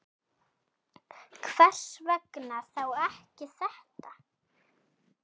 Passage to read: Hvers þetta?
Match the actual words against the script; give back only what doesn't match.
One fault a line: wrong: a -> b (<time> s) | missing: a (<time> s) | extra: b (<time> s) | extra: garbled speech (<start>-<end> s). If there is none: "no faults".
extra: vegna þá ekki (2.1 s)